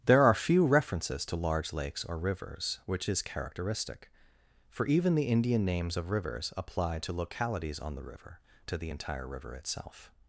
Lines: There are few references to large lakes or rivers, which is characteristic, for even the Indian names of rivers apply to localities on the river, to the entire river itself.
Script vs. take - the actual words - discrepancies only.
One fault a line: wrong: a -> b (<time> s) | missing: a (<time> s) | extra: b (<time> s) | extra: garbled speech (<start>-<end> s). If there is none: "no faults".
no faults